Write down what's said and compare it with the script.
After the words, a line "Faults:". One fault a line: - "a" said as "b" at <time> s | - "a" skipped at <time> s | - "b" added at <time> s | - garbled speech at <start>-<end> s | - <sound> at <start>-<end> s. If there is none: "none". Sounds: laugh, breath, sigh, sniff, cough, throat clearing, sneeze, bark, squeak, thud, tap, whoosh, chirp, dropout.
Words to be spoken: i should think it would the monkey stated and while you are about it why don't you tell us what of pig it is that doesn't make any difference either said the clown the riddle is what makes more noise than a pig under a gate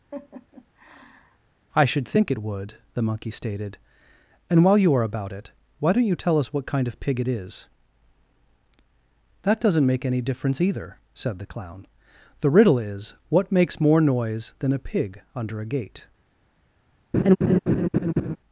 i should think it would the monkey stated and while you are about it why don't you tell us what kind of pig it is that doesn't make any difference either said the clown the riddle is what makes more noise than a pig under a gate
Faults:
- laugh at 0.1-1.4 s
- "kind" added at 6.7 s
- laugh at 17.1-18.4 s